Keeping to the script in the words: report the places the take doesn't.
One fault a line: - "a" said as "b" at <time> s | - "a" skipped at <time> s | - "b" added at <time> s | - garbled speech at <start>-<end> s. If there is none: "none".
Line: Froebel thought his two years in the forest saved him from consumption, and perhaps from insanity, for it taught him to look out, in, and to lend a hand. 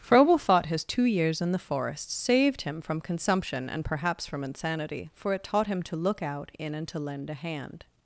none